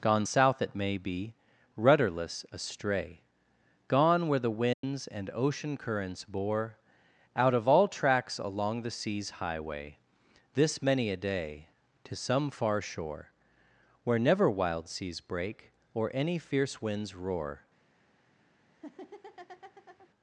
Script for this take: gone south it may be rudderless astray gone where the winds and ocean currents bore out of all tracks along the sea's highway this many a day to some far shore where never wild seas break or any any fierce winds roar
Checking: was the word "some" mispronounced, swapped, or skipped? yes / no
no